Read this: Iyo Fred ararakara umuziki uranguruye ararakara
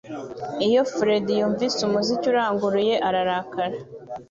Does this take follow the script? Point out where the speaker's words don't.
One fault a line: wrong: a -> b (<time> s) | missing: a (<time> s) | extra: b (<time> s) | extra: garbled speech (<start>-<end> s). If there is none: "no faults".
wrong: ararakara -> yumvise (1.4 s)